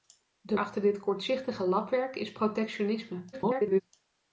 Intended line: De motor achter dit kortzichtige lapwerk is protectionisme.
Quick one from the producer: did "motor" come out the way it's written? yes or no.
no